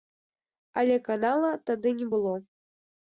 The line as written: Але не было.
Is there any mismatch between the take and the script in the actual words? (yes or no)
yes